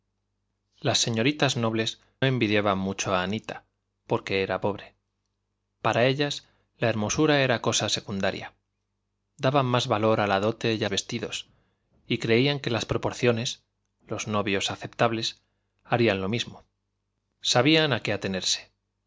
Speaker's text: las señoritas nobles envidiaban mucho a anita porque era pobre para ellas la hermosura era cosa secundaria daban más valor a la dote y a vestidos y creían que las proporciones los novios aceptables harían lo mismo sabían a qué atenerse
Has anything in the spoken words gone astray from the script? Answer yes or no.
no